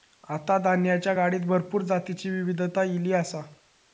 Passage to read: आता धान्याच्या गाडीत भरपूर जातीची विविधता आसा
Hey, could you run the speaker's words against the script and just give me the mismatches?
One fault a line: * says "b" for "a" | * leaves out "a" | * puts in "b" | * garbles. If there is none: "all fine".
* puts in "ईली"